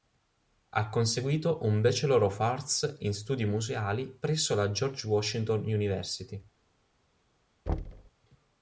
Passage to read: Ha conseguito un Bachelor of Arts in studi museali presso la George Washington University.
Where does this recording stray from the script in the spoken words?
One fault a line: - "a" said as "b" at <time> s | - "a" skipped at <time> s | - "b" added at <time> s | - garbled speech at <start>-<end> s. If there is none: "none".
none